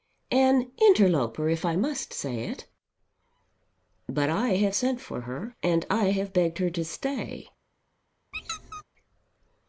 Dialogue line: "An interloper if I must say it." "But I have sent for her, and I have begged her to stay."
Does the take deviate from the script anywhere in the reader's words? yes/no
no